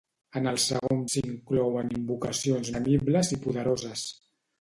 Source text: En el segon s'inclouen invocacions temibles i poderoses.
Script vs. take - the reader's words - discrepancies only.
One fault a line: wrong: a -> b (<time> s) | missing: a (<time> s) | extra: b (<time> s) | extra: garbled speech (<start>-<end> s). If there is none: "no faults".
no faults